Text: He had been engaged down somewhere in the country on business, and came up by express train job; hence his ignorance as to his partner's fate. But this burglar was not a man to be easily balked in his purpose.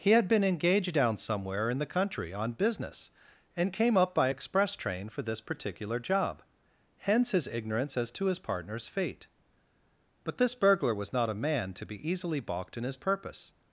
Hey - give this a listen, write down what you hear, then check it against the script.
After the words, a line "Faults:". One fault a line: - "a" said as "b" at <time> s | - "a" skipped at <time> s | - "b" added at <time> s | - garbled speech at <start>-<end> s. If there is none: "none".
He had been engaged down somewhere in the country on business, and came up by express train for this particular job; hence his ignorance as to his partner's fate. But this burglar was not a man to be easily balked in his purpose.
Faults:
- "for this particular" added at 5.1 s